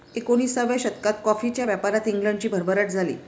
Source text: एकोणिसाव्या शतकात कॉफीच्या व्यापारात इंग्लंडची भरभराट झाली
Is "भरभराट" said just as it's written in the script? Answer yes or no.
yes